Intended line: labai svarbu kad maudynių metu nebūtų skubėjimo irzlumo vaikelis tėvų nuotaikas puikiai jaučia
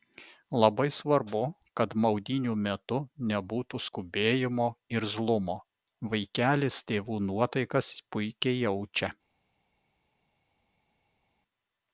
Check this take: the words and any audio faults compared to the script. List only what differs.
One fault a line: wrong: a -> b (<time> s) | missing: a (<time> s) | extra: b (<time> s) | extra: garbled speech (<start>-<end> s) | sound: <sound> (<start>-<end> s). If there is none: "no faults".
no faults